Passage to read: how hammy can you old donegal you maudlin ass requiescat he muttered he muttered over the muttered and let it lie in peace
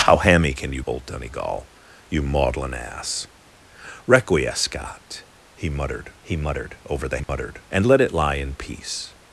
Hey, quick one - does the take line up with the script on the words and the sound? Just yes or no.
no